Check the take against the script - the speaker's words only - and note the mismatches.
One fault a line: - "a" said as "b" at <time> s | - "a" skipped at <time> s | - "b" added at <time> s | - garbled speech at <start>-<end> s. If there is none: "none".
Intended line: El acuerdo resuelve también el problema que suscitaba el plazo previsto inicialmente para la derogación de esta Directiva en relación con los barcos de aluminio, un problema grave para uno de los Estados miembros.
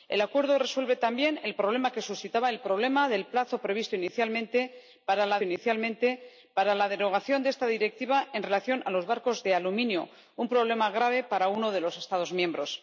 - "inicialmente para la" added at 5.4 s